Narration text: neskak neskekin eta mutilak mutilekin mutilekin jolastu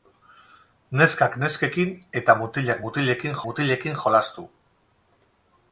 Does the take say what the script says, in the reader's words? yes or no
yes